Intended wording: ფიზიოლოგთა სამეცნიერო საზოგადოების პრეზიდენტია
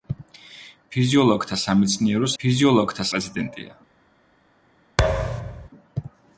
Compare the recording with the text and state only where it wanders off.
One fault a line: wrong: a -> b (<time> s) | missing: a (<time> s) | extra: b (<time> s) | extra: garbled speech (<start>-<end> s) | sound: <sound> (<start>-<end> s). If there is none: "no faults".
wrong: საზოგადოების -> ფიზიოლოგთა (2.4 s)
sound: thud (5.0-5.7 s)